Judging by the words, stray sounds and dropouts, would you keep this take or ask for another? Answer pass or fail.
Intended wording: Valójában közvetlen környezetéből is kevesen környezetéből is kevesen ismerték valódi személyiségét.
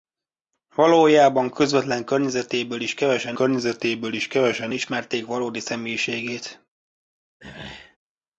fail